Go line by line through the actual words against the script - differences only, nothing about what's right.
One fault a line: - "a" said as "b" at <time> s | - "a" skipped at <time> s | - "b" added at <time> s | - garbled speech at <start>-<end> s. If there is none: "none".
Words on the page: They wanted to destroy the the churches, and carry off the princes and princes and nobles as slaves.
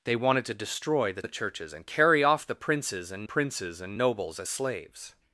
none